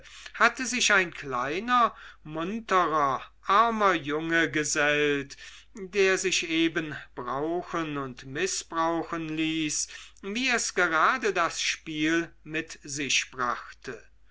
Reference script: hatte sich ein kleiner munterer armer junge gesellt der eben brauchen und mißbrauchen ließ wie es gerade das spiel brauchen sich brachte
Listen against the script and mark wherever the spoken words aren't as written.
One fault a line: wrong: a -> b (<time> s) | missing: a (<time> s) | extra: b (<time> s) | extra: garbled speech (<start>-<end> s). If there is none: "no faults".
extra: sich (6.2 s)
wrong: brauchen -> mit (12.4 s)